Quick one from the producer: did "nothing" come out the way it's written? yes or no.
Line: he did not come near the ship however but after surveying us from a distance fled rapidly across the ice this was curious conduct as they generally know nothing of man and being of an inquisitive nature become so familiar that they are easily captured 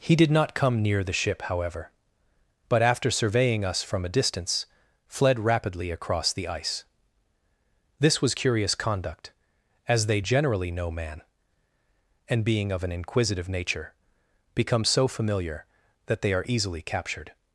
no